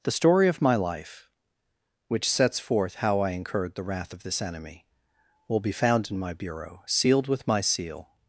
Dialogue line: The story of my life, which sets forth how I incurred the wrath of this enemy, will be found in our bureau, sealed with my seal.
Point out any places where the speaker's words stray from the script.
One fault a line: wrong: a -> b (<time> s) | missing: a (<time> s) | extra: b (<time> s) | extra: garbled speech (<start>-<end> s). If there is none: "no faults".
wrong: our -> my (6.2 s)